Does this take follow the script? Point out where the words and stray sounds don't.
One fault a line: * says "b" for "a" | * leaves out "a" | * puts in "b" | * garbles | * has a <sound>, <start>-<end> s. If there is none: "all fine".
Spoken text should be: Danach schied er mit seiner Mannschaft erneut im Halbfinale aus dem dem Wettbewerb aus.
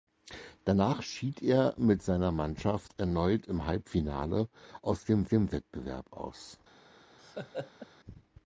* has a laugh, 7.2-7.9 s